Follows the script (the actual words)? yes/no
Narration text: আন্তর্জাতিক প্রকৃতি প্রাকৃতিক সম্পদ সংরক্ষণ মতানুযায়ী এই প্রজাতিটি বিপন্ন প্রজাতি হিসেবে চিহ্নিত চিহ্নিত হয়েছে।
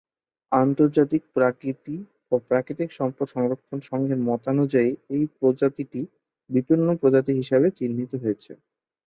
no